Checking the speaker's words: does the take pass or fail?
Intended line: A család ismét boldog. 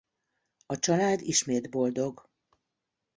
pass